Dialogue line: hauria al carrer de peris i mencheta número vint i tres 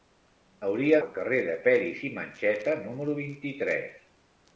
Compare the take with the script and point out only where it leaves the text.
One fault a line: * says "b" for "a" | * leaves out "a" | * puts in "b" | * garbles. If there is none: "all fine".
all fine